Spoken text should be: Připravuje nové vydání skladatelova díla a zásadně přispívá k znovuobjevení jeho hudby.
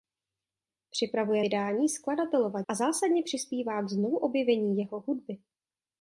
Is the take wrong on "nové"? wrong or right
wrong